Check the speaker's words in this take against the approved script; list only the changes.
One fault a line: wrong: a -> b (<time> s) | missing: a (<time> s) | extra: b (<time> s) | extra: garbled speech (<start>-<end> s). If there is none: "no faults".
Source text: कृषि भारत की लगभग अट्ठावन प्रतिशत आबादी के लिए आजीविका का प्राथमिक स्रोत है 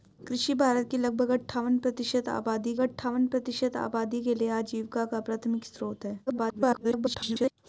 extra: अट्ठावन प्रतिशत आबादी (2.8 s)
extra: garbled speech (6.3-7.5 s)